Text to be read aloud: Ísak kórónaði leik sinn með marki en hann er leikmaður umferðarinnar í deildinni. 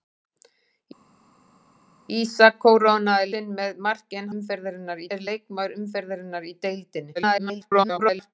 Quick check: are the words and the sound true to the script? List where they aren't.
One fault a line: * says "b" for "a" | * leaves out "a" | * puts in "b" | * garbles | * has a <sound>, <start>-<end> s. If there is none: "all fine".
* leaves out "leik"
* says "umferðarinnar" for "hann"
* garbles